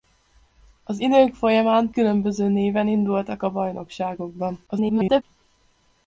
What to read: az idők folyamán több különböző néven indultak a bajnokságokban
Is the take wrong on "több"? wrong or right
wrong